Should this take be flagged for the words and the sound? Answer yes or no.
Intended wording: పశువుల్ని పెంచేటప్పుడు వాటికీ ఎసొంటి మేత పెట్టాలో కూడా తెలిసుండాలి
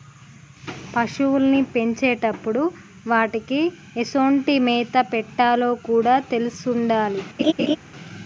yes